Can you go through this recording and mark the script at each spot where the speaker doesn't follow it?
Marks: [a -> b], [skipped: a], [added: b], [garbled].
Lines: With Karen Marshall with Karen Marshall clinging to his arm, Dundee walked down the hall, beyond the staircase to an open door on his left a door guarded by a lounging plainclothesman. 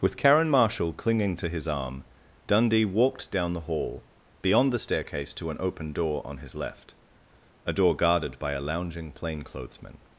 With Karen Marshall [skipped: with Karen Marshall] clinging to his arm, Dundee walked down the hall, beyond the staircase to an open door on his left a door guarded by a lounging plainclothesman.